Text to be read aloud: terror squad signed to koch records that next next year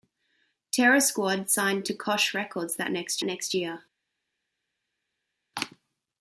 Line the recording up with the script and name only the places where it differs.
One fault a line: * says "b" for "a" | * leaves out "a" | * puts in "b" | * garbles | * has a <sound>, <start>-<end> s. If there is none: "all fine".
all fine